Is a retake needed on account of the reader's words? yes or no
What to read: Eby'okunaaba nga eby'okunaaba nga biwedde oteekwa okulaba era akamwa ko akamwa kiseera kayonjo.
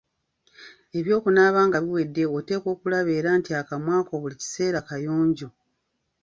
yes